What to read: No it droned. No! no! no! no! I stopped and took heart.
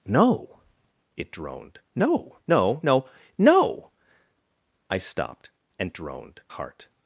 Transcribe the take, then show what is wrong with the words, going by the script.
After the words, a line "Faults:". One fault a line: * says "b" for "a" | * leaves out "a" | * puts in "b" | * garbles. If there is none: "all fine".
No it droned. No! no! no! no! I stopped and droned heart.
Faults:
* says "droned" for "took"